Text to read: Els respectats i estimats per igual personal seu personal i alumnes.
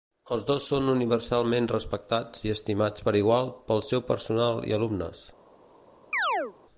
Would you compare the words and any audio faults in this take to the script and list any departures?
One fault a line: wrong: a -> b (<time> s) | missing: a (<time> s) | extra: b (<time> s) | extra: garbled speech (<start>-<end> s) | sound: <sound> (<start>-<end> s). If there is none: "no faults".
extra: dos són universalment (0.5 s)
wrong: personal -> pel (3.7 s)
sound: chirp (6.1-6.5 s)